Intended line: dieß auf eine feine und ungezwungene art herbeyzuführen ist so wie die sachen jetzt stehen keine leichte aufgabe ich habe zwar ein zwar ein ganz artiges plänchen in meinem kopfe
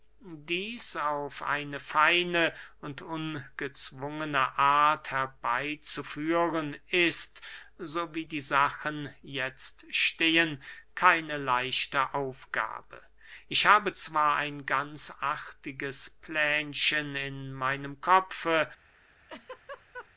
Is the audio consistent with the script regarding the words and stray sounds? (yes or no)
no